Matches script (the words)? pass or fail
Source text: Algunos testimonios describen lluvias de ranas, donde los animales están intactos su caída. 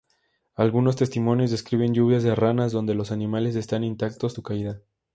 pass